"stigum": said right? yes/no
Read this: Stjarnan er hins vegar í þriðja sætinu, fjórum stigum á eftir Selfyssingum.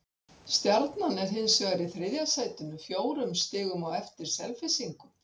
yes